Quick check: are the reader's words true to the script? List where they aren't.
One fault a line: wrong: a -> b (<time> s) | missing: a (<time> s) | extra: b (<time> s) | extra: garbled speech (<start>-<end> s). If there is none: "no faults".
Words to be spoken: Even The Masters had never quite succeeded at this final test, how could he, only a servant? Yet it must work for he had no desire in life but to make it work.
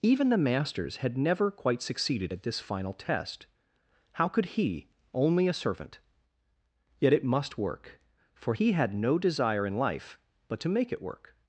no faults